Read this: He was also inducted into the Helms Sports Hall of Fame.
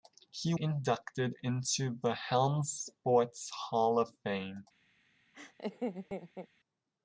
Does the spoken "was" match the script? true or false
false